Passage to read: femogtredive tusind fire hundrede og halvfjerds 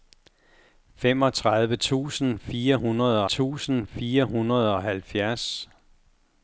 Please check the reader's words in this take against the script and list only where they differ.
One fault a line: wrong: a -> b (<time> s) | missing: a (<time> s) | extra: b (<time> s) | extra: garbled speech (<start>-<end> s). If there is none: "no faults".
extra: tusind fire hundrede (3.2 s)